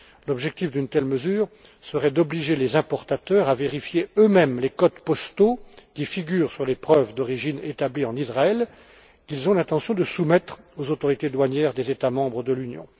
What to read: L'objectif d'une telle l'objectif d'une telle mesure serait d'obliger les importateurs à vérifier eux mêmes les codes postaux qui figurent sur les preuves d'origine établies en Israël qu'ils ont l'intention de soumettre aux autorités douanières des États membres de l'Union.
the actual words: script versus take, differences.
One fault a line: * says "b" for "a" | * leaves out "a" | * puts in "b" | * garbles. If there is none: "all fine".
* leaves out "l'objectif d'une telle"